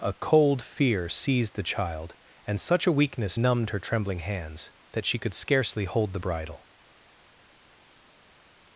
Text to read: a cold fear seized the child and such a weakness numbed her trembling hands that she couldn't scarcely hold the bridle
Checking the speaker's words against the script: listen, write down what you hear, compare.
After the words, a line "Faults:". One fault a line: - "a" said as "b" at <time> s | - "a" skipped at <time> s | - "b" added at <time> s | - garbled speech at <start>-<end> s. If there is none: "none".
a cold fear seized the child and such a weakness numbed her trembling hands that she could scarcely hold the bridle
Faults:
- "couldn't" said as "could" at 5.2 s